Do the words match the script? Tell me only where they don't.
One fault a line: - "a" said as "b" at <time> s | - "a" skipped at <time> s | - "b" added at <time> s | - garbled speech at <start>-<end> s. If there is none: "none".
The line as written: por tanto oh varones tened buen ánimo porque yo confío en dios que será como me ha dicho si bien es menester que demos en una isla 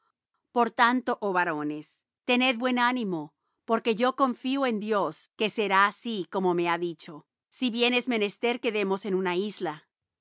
- "así" added at 5.9 s